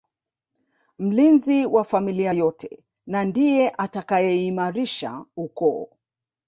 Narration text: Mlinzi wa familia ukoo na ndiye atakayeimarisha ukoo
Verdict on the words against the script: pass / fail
fail